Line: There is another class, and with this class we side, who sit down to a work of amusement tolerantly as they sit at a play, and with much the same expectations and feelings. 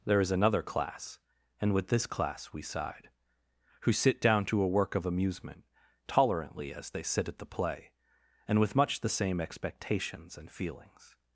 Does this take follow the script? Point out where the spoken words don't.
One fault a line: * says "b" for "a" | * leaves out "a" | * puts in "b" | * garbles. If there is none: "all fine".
* says "the" for "a"